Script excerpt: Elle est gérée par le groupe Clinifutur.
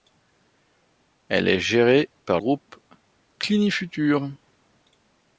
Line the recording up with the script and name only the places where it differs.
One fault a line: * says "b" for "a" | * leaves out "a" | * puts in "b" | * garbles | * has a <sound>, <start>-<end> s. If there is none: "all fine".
* leaves out "le"